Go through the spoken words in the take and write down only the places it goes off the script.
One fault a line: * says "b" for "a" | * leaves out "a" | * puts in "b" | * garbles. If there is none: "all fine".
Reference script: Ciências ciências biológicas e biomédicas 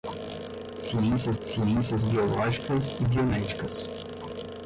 all fine